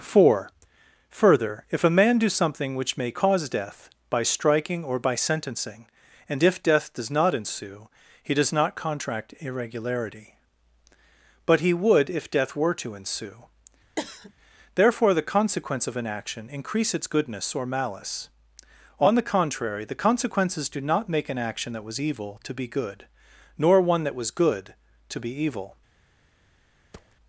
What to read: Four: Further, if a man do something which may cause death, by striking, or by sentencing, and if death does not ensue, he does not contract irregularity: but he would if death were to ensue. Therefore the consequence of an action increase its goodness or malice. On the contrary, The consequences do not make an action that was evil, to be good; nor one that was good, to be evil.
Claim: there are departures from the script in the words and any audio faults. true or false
true